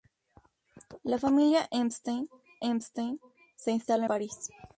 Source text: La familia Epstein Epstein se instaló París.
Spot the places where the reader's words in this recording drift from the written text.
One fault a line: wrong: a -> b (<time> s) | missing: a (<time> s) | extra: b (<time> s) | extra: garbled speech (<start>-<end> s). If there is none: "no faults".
no faults